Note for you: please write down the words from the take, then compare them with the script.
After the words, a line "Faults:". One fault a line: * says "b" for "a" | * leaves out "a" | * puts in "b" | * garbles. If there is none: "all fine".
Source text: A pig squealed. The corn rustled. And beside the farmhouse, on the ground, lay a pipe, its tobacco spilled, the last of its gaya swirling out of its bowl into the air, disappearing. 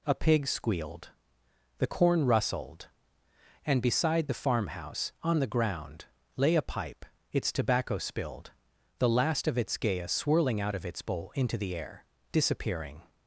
A pig squealed. The corn rustled. And beside the farmhouse, on the ground, lay a pipe, its tobacco spilled, the last of its gaya swirling out of its bowl into the air, disappearing.
Faults:
all fine